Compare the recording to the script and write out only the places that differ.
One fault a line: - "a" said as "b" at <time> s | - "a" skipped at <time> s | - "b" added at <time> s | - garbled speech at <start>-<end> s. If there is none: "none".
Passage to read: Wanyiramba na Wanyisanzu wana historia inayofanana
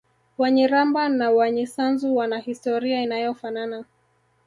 none